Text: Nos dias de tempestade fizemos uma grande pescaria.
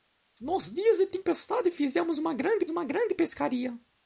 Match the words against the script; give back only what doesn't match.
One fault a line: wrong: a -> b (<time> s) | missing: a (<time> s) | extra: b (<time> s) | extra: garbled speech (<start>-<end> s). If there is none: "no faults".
extra: uma grande (2.7 s)